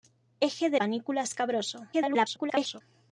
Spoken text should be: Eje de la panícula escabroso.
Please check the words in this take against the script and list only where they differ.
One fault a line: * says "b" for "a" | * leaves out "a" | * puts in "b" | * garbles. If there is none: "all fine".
* leaves out "la"
* garbles